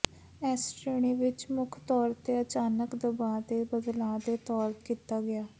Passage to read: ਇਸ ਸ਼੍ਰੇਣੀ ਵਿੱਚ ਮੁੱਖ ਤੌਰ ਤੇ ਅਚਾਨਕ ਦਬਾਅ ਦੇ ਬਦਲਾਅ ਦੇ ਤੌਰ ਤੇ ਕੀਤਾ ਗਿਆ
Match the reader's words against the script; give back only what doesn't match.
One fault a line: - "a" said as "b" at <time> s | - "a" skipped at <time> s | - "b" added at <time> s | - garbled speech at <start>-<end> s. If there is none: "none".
- "ਤੇ" skipped at 4.7 s